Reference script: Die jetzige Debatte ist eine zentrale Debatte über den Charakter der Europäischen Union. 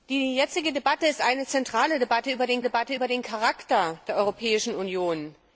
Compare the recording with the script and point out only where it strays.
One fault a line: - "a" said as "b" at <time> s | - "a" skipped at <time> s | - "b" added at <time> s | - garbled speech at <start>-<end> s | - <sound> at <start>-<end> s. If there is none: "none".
- "Debatte über den" added at 2.6 s